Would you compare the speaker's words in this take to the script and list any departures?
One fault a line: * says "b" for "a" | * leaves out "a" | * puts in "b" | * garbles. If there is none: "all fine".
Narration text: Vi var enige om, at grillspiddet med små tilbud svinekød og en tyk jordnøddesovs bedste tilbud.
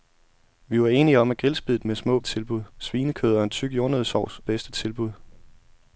all fine